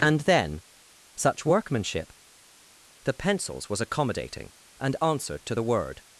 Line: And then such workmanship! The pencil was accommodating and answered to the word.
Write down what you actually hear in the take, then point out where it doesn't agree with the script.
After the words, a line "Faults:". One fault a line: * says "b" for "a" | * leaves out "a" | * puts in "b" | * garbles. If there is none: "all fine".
And then such workmanship! The pencils was accommodating and answered to the word.
Faults:
* says "pencils" for "pencil"